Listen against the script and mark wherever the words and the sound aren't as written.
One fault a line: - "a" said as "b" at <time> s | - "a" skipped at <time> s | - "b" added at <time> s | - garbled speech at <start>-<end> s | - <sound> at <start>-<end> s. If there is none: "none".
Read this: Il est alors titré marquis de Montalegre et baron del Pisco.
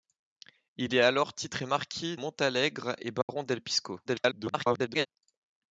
- "de" skipped at 2.2 s
- dropout at 3.2-3.3 s
- garbled speech at 4.0-5.1 s